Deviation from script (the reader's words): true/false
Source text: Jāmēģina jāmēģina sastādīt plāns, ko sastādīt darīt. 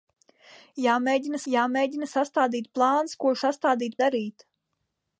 false